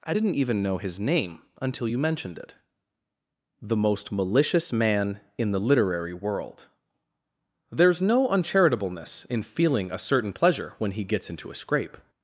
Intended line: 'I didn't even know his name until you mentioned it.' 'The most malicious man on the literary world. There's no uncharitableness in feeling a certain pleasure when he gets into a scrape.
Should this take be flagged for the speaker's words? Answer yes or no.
yes